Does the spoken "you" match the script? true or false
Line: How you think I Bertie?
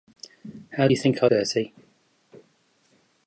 true